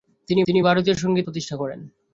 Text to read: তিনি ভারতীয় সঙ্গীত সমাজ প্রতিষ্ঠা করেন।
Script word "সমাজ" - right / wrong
wrong